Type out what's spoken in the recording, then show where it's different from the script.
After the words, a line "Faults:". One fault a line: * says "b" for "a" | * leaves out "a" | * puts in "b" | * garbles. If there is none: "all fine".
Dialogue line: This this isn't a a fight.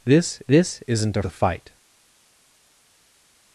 This this isn't a a fight.
Faults:
all fine